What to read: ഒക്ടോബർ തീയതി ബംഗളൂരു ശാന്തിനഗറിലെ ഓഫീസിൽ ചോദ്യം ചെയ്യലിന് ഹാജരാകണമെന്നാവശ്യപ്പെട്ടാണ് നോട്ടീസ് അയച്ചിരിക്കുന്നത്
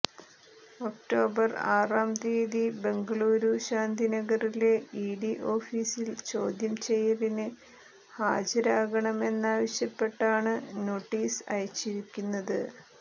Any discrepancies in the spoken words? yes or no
yes